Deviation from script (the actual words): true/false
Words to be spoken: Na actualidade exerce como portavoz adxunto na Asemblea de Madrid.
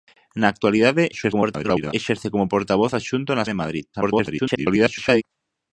true